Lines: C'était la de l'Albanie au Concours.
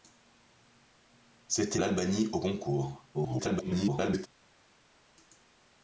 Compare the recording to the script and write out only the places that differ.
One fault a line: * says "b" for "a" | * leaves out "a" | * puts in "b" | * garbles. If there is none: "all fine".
* leaves out "la de"
* garbles